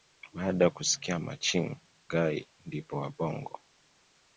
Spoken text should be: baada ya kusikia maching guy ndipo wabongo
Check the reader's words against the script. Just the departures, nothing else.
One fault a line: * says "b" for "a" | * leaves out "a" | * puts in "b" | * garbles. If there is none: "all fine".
all fine